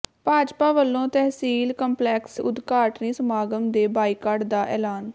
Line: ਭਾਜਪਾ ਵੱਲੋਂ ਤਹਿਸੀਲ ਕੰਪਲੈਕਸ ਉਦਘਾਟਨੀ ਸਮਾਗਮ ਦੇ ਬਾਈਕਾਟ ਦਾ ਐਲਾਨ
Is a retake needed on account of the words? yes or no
no